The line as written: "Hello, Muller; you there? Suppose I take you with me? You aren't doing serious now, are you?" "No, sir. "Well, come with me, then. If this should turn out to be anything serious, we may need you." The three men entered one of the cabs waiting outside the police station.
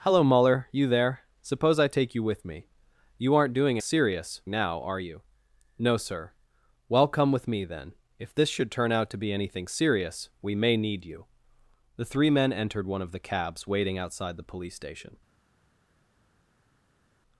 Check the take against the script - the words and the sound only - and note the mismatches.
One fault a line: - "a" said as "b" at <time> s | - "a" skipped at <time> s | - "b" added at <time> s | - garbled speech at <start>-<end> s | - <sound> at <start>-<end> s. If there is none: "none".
none